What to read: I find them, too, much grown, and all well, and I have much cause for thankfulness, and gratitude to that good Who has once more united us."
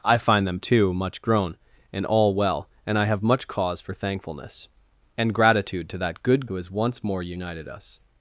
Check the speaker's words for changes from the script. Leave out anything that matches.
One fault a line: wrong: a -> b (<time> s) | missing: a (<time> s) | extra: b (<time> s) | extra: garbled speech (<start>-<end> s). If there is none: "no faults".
no faults